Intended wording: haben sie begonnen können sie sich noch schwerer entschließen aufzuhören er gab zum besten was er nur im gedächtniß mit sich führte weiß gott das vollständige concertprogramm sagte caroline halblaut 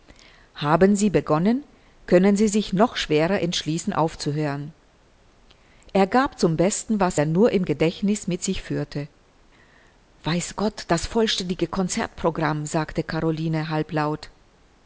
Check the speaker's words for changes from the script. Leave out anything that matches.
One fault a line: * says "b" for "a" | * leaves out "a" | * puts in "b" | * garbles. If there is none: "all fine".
all fine